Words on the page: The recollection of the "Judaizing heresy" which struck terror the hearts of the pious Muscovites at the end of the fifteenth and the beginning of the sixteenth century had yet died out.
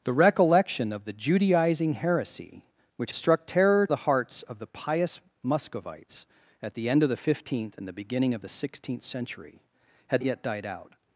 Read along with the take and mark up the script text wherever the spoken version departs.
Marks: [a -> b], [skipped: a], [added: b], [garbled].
The recollection of the "Judaizing heresy" which struck terror the hearts of the pious Muscovites at the end of the fifteenth and the beginning of the sixteenth century had yet died out.